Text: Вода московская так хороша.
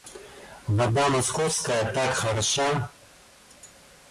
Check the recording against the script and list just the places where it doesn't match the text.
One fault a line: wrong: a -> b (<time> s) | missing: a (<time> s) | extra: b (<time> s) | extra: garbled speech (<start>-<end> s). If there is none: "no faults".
no faults